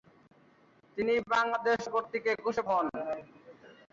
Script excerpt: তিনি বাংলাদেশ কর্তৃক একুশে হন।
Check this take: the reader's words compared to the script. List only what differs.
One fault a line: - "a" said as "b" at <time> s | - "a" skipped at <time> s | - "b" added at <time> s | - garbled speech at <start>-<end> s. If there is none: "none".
none